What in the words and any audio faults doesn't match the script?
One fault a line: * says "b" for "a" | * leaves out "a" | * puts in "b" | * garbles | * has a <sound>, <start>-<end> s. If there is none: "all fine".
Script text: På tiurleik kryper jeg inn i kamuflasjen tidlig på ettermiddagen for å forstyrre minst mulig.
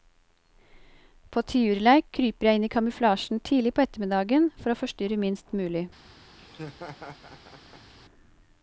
* has a laugh, 6.4-7.9 s